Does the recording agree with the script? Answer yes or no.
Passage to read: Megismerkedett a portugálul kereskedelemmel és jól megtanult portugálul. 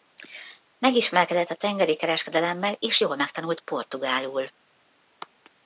no